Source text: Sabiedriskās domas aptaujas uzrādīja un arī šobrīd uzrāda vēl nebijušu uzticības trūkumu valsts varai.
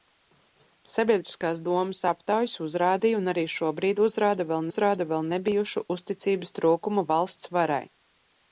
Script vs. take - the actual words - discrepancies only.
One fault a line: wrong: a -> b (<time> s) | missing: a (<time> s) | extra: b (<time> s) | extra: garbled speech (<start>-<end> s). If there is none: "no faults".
extra: uzrāda vēl (4.7 s)